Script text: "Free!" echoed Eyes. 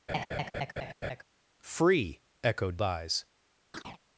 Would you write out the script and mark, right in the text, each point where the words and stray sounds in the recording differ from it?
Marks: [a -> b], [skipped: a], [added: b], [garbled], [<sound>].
[laugh] "Free!" echoed Eyes. [chirp]